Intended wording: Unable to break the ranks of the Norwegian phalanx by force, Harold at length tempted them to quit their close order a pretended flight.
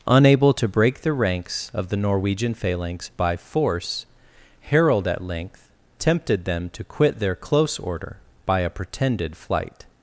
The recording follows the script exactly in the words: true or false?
false